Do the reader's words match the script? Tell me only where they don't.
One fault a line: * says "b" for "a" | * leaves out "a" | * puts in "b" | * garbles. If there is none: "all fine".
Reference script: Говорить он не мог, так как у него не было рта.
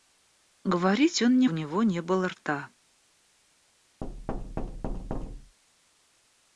* leaves out "мог так как"